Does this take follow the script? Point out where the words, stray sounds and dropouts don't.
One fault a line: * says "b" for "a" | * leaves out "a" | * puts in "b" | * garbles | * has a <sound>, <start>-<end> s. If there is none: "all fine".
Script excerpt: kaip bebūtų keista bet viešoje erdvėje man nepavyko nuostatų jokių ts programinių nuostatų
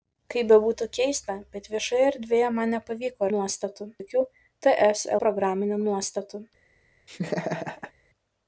* has a laugh, 7.1-7.9 s